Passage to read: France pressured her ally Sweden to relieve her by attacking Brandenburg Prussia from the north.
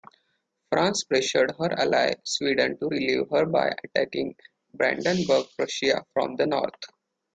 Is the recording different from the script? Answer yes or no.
no